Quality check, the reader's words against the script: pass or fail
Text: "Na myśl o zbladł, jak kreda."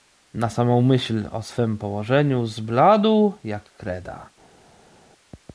fail